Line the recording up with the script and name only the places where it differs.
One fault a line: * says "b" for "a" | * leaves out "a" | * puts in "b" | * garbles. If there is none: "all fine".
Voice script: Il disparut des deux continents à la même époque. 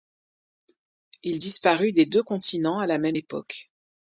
all fine